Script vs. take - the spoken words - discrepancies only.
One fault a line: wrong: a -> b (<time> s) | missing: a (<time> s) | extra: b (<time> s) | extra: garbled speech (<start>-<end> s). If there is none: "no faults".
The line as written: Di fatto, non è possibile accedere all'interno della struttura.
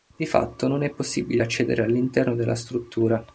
no faults